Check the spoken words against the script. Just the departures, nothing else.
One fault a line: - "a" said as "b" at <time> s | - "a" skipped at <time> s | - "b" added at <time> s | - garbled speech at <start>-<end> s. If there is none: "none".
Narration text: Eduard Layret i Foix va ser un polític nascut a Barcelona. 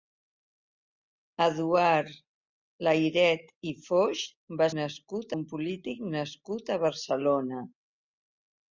- "ser" said as "nascut" at 4.8 s